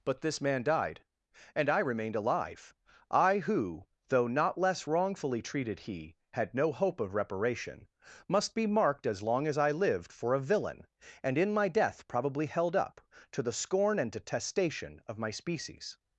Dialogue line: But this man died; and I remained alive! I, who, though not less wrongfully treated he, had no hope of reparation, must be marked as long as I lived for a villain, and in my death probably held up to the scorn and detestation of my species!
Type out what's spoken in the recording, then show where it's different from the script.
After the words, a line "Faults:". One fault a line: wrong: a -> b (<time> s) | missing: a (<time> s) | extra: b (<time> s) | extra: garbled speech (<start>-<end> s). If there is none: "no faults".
But this man died; and I remained alive! I, who, though not less wrongfully treated he, had no hope of reparation, must be marked as long as I lived for a villain, and in my death probably held up to the scorn and detestation of my species!
Faults:
no faults